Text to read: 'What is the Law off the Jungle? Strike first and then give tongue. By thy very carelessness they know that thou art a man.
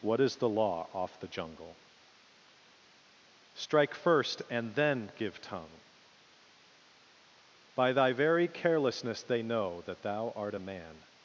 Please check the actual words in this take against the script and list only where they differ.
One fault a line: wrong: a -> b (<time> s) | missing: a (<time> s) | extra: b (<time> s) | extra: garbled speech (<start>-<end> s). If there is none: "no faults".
no faults